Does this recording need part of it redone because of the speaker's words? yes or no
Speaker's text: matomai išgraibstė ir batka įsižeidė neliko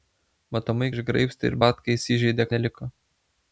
no